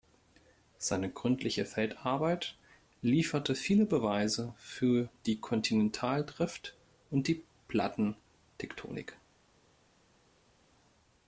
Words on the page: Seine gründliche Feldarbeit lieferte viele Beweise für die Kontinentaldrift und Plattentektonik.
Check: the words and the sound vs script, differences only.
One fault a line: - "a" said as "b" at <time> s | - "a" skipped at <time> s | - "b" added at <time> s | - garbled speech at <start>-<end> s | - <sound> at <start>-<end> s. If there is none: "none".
- "die" added at 7.3 s